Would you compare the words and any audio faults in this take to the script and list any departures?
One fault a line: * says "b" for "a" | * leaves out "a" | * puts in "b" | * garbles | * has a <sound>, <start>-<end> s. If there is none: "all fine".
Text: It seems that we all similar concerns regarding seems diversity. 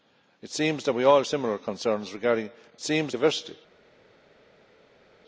all fine